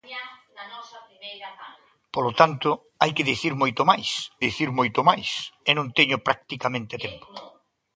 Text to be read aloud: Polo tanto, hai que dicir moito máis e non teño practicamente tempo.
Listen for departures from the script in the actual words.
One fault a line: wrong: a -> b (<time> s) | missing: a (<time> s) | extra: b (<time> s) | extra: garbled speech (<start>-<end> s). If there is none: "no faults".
extra: dicir moito máis (4.5 s)